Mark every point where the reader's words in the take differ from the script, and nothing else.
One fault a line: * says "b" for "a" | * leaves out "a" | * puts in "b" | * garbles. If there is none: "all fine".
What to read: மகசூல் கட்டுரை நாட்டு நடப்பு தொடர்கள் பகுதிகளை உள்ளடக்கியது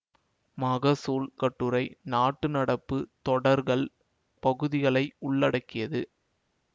all fine